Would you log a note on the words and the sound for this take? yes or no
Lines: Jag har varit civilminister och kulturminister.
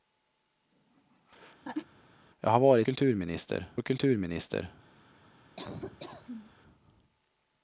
yes